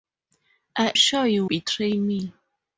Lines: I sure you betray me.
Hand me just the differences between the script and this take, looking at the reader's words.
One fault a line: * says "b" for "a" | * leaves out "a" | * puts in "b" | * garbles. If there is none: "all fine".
all fine